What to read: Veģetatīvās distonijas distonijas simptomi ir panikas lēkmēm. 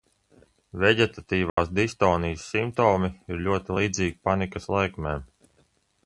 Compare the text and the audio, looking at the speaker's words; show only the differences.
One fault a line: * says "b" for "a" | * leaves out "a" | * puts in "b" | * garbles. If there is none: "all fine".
* leaves out "distonijas"
* puts in "ļoti līdzīgi"